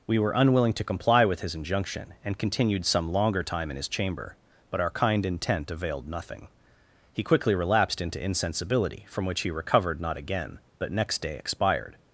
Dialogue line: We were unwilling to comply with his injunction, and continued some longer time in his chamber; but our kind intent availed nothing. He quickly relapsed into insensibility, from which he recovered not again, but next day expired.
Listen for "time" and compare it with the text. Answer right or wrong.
right